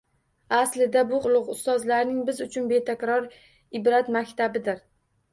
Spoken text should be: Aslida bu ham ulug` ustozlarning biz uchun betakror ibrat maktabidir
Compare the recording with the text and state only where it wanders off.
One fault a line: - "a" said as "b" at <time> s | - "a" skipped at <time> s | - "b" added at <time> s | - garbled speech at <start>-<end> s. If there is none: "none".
- "ham" skipped at 1.2 s